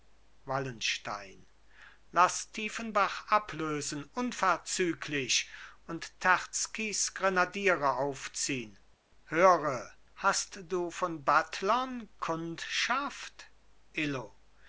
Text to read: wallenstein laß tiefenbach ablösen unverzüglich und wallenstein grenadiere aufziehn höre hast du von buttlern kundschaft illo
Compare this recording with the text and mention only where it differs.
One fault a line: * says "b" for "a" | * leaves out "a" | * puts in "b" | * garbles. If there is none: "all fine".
* says "terzkys" for "wallenstein"